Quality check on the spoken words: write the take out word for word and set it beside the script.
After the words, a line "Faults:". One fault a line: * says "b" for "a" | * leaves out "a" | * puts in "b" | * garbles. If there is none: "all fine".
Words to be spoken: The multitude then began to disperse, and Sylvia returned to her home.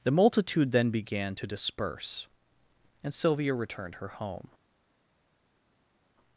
The multitude then began to disperse, and Sylvia returned her home.
Faults:
* leaves out "to"